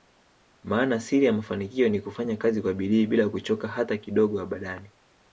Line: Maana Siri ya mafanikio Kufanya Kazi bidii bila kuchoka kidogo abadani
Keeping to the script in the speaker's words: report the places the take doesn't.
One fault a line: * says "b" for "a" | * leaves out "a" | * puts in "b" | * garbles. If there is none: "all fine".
* puts in "Ni"
* puts in "kwa"
* puts in "hata"